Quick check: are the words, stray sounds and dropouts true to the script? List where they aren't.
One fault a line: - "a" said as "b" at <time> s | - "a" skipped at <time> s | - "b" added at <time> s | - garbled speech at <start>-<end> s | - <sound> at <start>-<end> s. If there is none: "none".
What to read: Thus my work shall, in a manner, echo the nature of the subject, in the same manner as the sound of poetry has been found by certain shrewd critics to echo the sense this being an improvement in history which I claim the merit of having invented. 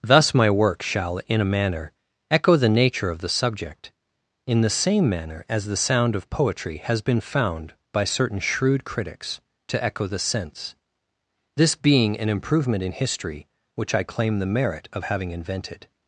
none